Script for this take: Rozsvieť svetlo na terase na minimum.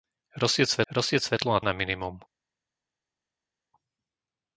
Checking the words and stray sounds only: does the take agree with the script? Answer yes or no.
no